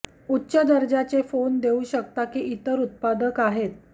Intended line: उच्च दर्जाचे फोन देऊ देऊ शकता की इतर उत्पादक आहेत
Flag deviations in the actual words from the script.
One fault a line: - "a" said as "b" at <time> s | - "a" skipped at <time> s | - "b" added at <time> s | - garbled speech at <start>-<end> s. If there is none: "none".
- "देऊ" skipped at 1.8 s